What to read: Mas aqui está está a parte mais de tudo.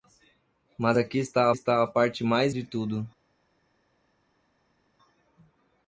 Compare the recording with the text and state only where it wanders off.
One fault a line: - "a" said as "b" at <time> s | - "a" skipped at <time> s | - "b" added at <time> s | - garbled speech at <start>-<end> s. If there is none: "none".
none